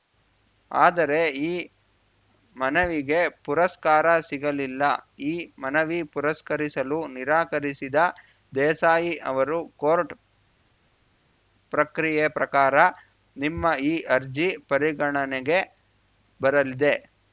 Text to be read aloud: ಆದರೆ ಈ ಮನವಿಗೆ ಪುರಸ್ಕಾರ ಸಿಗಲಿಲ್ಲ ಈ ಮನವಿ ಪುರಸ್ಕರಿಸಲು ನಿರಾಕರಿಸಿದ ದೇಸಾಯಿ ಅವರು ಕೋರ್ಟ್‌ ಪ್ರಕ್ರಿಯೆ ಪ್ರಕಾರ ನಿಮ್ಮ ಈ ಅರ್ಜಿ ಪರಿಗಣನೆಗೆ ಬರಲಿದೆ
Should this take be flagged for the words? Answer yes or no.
no